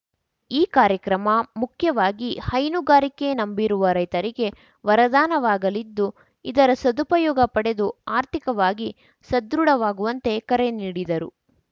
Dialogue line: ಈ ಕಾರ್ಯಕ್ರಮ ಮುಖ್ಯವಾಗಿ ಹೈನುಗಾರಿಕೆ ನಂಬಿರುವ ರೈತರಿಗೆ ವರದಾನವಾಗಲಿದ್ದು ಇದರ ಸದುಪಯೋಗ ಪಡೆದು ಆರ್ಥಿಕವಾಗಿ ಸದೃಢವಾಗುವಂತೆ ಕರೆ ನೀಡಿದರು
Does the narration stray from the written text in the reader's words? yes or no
no